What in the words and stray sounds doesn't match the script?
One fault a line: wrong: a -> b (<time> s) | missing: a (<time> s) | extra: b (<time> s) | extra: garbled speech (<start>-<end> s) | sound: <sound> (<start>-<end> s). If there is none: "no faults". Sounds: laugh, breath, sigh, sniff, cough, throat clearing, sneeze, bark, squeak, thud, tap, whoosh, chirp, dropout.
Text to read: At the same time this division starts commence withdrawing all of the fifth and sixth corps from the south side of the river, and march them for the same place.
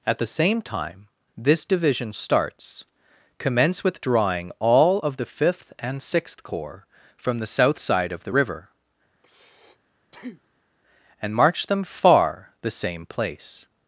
sound: breath (9.1-10.7 s)
wrong: for -> far (11.8 s)